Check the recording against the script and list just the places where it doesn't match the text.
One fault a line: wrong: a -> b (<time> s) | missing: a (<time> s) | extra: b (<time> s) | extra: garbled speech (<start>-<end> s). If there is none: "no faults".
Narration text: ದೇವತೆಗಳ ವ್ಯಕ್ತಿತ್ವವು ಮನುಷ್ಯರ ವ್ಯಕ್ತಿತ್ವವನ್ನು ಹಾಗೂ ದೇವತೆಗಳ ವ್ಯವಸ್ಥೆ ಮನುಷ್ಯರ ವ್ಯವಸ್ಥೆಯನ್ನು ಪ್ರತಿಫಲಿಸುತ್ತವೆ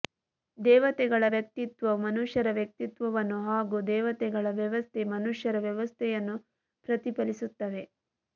no faults